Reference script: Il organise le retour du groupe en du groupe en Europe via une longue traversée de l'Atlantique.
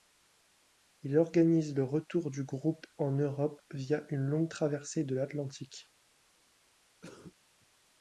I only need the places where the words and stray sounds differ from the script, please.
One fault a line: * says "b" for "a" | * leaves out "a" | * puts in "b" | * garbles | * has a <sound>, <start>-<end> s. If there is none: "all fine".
* leaves out "du groupe en"
* has a cough, 7.0-7.3 s